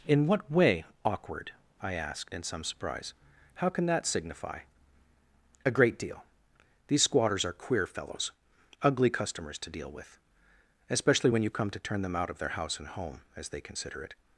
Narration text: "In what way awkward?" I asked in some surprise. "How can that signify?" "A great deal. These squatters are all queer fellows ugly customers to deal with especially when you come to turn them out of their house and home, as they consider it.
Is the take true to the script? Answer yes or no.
no